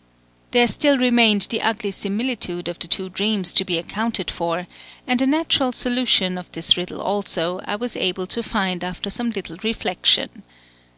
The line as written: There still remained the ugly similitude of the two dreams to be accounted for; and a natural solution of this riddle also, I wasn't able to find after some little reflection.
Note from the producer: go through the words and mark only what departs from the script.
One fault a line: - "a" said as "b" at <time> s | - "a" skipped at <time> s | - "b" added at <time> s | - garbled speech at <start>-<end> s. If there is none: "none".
- "wasn't" said as "was" at 7.8 s